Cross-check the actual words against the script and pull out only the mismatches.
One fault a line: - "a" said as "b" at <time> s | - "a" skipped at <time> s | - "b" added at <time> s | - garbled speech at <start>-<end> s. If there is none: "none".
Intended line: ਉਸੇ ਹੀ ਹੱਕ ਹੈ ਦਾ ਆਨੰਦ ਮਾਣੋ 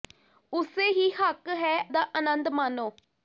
none